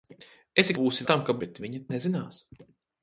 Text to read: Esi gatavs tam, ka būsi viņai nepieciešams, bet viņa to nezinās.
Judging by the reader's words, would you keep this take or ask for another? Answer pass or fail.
fail